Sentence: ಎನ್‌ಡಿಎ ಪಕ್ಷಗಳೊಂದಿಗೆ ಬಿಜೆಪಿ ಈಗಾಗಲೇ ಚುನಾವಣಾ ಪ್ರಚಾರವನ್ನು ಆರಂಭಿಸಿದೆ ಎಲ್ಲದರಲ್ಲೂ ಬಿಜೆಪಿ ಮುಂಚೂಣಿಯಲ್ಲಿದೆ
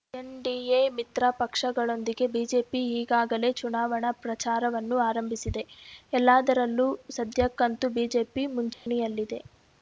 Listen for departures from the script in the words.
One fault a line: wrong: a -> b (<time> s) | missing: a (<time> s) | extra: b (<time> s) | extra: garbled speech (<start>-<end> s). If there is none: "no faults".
extra: ಮಿತ್ರ (0.9 s)
extra: ಸದ್ಯಕ್ಕಂತೂ (7.2 s)